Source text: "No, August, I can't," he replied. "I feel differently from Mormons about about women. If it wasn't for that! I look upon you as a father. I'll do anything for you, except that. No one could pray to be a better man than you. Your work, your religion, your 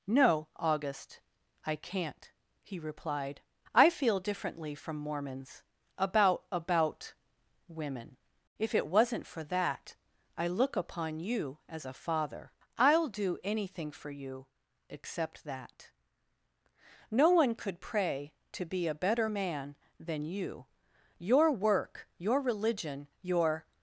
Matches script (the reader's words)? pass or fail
pass